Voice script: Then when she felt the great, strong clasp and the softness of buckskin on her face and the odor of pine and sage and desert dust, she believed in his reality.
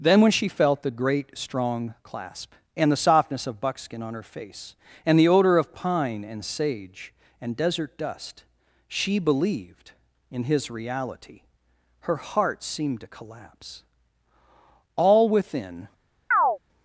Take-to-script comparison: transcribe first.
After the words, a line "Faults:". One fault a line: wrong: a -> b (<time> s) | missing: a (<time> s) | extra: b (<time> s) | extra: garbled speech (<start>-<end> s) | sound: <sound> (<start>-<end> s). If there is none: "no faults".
Then when she felt the great, strong clasp and the softness of buckskin on her face and the odor of pine and sage and desert dust, she believed in his reality. Her heart seemed to collapse. All within
Faults:
extra: Her heart seemed to collapse All within (12.0 s)
sound: chirp (16.3-16.6 s)